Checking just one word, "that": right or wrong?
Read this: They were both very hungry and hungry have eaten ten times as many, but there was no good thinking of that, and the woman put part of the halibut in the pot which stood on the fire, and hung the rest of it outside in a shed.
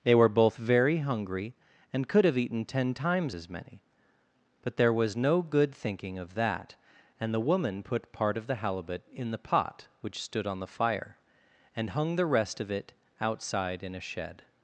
right